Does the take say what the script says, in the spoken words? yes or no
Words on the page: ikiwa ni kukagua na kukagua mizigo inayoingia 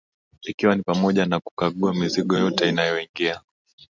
no